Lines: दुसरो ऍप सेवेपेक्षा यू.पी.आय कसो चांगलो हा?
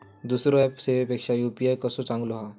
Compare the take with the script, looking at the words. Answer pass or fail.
pass